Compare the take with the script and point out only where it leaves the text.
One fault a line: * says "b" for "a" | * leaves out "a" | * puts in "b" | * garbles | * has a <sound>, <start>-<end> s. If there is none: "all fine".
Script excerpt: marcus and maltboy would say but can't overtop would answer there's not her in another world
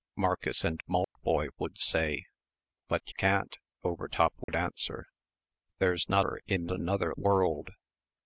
* has a dropout, 1.0-1.2 s
* has a dropout, 4.4-4.5 s